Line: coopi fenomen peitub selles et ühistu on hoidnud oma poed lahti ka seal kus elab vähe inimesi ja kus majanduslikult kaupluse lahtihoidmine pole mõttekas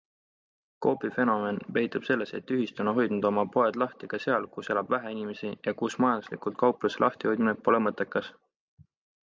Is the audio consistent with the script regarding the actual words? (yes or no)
yes